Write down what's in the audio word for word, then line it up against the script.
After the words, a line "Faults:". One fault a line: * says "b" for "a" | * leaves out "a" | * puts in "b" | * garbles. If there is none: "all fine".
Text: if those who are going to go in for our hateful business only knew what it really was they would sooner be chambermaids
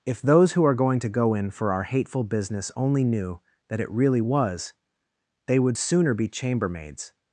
if those who are going to go in for our hateful business only knew that it really was they would sooner be chambermaids
Faults:
* says "that" for "what"